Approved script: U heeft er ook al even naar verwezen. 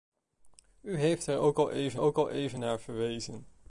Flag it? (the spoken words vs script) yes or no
yes